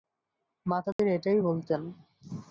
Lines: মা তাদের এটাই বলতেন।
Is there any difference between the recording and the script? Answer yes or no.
no